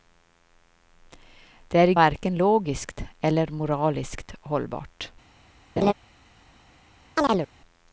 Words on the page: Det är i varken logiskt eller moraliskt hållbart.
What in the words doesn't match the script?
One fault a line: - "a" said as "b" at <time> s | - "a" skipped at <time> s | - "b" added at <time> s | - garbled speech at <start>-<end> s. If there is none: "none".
none